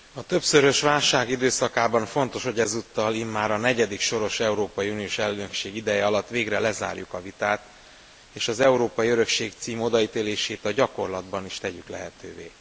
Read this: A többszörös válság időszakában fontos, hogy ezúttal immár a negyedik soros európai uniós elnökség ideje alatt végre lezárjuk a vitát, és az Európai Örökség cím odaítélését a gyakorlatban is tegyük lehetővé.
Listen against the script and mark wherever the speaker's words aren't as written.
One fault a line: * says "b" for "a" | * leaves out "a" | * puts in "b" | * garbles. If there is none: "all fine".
all fine